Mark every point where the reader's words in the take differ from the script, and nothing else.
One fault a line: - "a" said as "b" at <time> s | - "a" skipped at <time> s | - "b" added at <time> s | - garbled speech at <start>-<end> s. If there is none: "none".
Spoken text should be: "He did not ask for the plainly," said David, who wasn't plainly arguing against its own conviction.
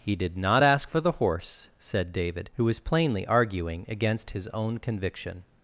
- "plainly" said as "horse" at 1.2 s
- "wasn't" said as "was" at 2.6 s
- "its" said as "his" at 4.3 s